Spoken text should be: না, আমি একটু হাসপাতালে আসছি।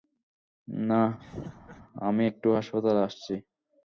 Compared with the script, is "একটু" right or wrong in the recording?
right